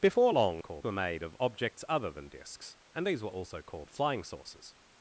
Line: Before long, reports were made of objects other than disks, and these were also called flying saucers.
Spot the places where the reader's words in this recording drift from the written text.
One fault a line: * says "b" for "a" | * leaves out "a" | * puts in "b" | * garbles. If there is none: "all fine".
* says "called" for "reports"